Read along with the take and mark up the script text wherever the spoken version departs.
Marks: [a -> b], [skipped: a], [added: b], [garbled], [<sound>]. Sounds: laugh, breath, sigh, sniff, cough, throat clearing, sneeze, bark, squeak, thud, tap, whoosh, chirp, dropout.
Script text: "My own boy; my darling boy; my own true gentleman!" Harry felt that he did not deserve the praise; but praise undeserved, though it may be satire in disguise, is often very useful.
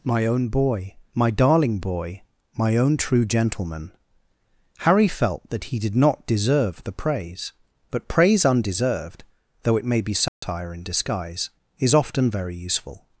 "My own boy; my darling boy; my own true gentleman!" Harry felt that he did not deserve the praise; but praise undeserved, though it may be satire [dropout] in disguise, is often very useful.